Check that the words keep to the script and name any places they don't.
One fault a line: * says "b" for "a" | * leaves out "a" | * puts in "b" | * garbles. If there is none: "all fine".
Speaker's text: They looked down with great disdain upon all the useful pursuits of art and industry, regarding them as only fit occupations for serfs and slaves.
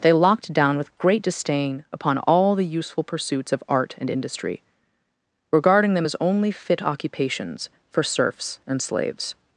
* says "locked" for "looked"